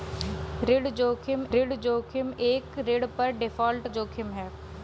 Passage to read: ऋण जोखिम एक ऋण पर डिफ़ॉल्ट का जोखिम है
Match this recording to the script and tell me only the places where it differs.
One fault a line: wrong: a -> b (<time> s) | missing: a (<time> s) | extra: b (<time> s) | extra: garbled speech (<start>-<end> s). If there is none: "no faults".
extra: ऋण जोखिम (1.5 s)
missing: का (3.9 s)